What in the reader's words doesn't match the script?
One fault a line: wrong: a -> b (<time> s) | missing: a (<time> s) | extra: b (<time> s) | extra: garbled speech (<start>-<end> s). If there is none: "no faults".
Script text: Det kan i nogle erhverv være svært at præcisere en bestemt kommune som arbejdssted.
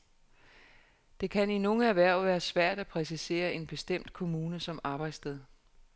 no faults